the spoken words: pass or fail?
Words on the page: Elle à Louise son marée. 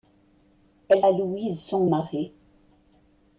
pass